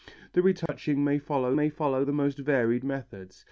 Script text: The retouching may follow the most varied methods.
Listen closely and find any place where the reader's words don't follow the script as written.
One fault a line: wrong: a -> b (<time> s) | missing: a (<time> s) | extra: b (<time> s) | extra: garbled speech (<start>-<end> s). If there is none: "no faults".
extra: may follow (1.5 s)